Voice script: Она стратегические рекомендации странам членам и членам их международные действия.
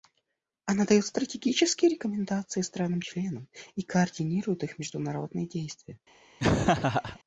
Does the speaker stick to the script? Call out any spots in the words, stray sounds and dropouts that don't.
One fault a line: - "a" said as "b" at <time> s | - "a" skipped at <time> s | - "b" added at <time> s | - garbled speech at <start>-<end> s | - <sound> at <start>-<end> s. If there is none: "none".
- "дает" added at 0.8 s
- "членам" said as "координирует" at 3.8 s
- laugh at 6.4-7.2 s